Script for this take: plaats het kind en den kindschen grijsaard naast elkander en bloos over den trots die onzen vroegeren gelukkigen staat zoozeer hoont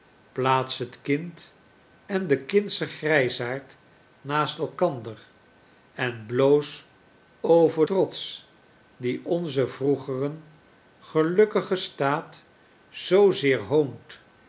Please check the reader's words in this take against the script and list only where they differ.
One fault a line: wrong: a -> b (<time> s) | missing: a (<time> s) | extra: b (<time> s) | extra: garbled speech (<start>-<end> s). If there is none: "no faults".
missing: den (7.9 s)